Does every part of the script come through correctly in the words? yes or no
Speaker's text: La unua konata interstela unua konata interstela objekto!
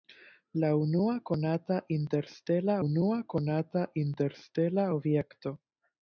yes